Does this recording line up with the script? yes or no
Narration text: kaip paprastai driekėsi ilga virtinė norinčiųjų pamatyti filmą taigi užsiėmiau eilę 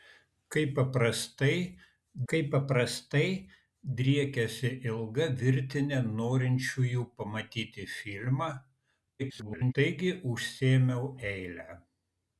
no